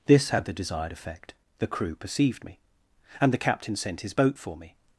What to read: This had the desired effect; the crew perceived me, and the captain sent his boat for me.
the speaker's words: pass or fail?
pass